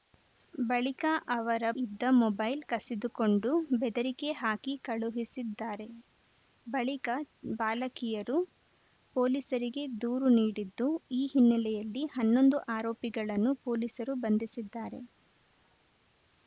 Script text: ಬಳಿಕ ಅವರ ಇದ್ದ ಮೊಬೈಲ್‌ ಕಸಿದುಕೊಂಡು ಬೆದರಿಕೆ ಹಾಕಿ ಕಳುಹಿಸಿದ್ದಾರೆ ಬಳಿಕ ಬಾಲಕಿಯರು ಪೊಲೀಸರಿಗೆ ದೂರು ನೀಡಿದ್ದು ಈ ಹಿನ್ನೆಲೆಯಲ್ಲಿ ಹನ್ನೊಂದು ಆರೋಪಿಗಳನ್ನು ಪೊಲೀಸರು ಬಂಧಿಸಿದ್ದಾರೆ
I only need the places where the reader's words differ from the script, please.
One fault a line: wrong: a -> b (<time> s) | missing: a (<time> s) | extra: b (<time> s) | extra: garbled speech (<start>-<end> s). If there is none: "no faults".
no faults